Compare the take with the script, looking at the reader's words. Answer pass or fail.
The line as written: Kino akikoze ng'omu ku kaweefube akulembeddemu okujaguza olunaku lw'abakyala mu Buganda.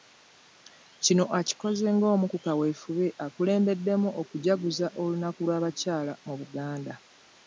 pass